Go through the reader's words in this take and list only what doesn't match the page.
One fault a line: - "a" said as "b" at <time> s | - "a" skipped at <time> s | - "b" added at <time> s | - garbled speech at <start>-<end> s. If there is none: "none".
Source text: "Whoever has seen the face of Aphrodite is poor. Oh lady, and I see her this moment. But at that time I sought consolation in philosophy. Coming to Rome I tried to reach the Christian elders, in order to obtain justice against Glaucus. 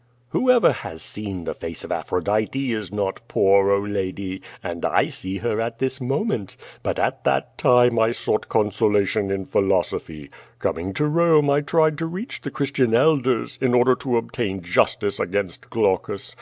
- "not" added at 2.9 s
- "at" added at 5.6 s